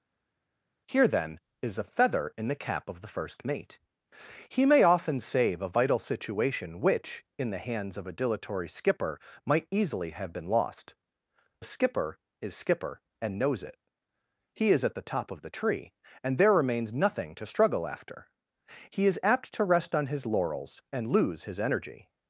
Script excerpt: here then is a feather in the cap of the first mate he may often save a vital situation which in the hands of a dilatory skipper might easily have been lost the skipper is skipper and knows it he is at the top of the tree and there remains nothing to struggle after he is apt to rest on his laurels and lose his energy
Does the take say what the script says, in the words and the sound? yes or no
no